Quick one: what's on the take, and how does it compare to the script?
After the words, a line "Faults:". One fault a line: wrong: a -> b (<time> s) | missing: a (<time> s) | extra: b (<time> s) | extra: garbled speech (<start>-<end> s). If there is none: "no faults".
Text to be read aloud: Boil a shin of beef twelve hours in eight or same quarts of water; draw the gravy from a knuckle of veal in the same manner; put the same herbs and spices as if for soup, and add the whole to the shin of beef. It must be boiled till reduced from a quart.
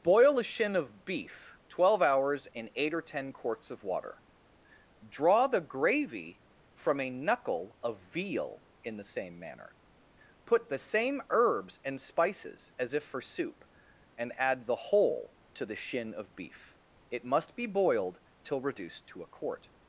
Boil a shin of beef twelve hours in eight or ten quarts of water; draw the gravy from a knuckle of veal in the same manner; put the same herbs and spices as if for soup, and add the whole to the shin of beef. It must be boiled till reduced to a quart.
Faults:
wrong: same -> ten (3.0 s)
wrong: from -> to (19.1 s)